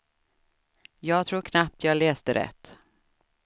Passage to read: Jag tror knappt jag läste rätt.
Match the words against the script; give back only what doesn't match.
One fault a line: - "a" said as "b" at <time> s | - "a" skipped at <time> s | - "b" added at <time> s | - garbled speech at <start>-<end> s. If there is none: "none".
none